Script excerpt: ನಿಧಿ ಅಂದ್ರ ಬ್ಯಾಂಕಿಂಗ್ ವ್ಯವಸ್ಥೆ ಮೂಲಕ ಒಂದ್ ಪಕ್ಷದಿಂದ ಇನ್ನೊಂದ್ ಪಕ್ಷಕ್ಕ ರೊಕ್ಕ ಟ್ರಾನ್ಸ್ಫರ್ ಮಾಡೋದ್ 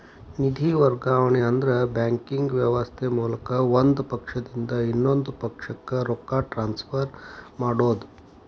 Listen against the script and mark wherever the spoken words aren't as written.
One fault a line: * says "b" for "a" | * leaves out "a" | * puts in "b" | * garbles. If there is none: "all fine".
* puts in "ವರ್ಗಾವಣೆ"